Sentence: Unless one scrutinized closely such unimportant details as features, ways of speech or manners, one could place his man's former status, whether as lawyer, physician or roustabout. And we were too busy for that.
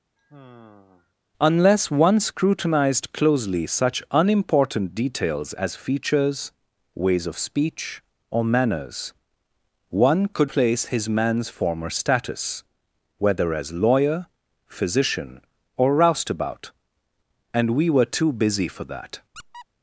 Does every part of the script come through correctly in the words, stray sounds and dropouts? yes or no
no